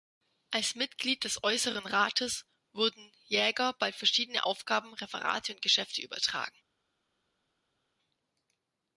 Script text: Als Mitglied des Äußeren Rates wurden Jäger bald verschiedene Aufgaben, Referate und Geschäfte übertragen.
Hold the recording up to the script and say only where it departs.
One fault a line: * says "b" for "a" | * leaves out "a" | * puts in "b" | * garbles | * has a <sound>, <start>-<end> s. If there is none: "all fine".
all fine